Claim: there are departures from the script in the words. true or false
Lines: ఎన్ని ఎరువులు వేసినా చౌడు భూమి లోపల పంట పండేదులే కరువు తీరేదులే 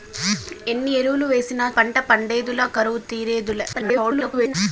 true